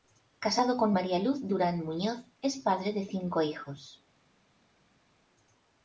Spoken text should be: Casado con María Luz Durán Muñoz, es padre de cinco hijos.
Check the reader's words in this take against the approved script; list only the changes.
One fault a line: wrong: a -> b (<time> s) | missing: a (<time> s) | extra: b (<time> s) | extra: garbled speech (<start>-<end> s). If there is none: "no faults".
no faults